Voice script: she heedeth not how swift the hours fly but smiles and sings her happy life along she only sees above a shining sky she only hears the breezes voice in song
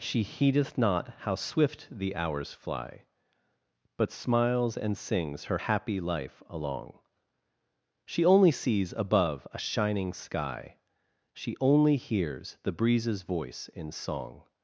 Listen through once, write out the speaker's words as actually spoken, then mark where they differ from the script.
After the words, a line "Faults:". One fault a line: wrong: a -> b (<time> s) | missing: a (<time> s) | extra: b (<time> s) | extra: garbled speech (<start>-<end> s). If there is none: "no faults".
she heedeth not how swift the hours fly but smiles and sings her happy life along she only sees above a shining sky she only hears the breezes voice in song
Faults:
no faults